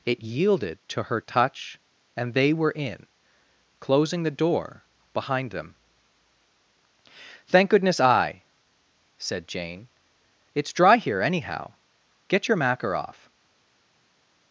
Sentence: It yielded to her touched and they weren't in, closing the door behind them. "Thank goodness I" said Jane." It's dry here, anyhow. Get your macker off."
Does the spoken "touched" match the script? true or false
false